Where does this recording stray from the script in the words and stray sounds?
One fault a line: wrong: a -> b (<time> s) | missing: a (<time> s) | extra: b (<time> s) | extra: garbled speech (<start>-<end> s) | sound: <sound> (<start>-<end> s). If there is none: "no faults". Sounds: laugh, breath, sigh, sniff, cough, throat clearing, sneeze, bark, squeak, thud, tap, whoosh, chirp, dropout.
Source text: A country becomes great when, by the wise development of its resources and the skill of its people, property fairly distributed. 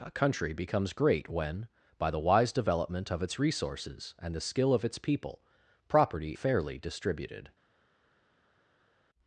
no faults